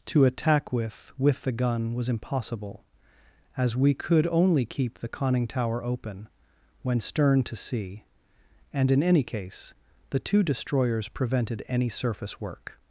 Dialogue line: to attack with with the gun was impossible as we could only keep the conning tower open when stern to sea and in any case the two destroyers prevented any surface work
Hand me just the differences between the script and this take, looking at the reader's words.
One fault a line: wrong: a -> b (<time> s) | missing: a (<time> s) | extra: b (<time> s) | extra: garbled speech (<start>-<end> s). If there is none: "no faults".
no faults